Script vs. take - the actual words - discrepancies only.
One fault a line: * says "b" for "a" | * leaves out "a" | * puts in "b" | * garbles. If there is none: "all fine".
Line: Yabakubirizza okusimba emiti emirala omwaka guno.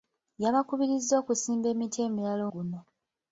* leaves out "omwaka"